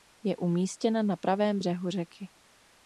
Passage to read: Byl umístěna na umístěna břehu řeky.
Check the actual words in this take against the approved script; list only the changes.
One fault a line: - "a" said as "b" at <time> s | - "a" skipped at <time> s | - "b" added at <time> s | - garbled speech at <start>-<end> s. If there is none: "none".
- "Byl" said as "Je" at 0.2 s
- "umístěna" said as "pravém" at 1.1 s